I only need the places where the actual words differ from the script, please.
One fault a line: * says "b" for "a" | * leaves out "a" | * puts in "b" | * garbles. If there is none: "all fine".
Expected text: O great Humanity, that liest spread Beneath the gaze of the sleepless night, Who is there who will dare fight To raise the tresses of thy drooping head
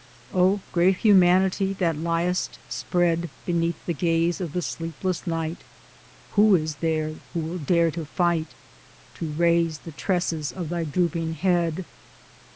* puts in "to"